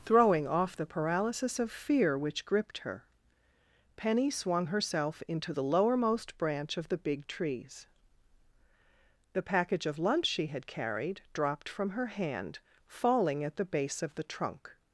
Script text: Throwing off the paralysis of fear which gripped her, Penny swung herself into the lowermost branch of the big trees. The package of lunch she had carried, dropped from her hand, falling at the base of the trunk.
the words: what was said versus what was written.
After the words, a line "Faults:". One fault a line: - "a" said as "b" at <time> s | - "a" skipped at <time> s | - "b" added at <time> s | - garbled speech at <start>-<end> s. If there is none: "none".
Throwing off the paralysis of fear which gripped her, Penny swung herself into the lowermost branch of the big trees. The package of lunch she had carried, dropped from her hand, falling at the base of the trunk.
Faults:
none